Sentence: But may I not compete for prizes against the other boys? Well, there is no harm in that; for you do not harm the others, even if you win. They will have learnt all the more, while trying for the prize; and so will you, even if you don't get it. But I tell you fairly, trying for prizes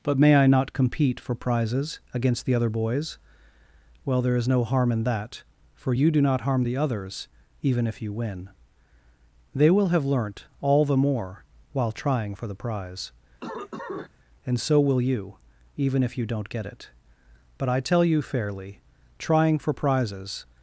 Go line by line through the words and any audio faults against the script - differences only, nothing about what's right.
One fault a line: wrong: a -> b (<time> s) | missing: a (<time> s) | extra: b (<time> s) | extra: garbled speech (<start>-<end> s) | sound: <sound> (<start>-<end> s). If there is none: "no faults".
sound: cough (13.4-14.1 s)